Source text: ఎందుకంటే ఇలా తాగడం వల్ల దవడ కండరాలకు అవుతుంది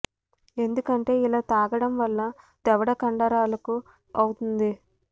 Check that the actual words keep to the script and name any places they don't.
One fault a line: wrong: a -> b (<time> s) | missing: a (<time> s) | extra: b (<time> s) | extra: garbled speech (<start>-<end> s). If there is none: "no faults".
no faults